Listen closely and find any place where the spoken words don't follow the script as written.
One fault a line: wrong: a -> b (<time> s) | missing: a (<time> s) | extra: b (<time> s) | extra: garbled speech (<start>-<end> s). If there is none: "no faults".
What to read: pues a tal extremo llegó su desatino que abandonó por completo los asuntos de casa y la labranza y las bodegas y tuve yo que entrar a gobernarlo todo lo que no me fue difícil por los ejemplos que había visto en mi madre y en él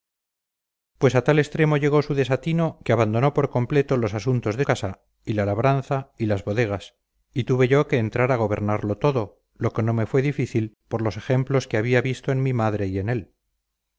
no faults